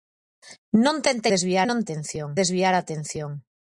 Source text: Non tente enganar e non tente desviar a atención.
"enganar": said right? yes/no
no